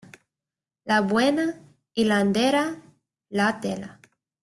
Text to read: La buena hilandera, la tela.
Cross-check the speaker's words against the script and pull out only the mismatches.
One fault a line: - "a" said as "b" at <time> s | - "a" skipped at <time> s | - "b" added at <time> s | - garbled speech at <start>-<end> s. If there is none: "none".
none